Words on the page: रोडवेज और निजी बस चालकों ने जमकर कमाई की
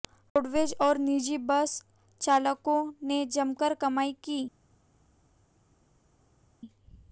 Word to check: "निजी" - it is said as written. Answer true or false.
true